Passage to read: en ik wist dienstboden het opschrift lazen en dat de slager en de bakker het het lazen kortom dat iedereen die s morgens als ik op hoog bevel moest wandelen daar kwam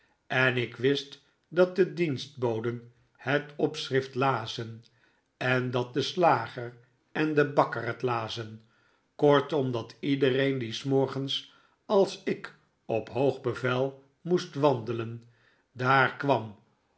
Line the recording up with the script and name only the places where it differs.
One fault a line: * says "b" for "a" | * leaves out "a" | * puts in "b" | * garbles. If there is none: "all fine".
* puts in "dat de"
* leaves out "het"